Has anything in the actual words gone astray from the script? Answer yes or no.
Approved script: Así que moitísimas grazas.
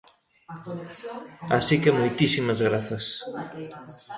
no